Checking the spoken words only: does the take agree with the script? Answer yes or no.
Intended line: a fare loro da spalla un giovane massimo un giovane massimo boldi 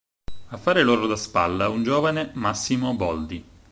no